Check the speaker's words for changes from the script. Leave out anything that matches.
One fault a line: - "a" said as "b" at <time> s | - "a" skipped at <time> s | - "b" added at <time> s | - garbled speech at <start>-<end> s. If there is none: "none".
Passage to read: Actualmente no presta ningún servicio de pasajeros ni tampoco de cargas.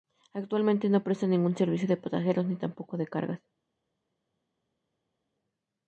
none